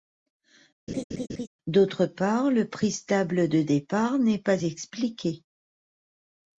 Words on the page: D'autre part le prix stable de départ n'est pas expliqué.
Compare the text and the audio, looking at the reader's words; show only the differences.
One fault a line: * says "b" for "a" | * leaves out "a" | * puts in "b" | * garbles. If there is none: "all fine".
all fine